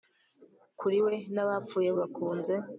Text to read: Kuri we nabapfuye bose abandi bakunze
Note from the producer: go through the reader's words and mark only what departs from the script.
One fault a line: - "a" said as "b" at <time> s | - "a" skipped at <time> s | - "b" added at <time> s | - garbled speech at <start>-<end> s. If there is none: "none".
- "bose abandi" skipped at 1.9 s